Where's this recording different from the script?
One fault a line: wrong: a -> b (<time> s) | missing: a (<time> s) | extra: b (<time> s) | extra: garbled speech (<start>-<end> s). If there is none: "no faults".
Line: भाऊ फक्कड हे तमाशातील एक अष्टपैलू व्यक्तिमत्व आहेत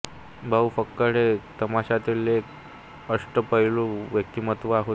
wrong: आहेत -> होते (4.7 s)